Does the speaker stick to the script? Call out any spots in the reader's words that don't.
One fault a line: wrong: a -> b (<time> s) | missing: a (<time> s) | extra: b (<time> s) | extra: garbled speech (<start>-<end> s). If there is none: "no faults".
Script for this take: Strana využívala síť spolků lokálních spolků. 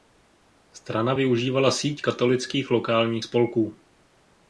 wrong: spolků -> katolických (2.0 s)